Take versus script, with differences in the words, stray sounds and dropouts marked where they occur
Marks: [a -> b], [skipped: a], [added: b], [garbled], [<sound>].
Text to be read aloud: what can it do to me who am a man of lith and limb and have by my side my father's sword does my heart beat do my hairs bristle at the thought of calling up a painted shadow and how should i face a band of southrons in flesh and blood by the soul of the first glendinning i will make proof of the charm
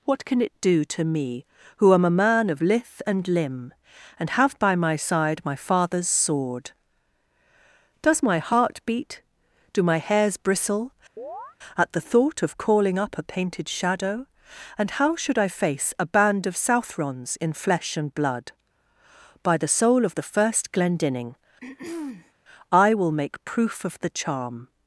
what can it do to me who am a man of lith and limb and have by my side my father's sword does my heart beat do my hairs bristle [chirp] at the thought of calling up a painted shadow and how should i face a band of southrons in flesh and blood by the soul of the first glendinning [throat clearing] i will make proof of the charm